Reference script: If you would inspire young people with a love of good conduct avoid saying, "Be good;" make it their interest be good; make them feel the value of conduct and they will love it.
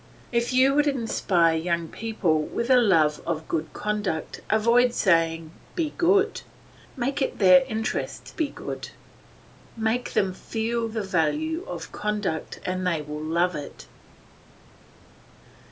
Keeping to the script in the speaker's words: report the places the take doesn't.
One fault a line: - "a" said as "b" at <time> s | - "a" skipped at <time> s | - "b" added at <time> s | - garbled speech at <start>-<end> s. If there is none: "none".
none